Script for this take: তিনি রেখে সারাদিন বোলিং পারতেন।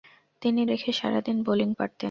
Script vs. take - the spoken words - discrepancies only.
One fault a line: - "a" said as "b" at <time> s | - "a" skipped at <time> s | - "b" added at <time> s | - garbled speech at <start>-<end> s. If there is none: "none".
none